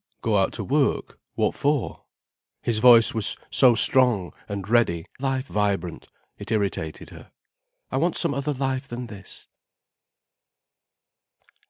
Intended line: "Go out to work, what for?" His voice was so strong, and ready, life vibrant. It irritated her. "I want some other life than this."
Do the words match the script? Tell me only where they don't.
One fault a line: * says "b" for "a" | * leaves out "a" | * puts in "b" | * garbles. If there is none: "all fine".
all fine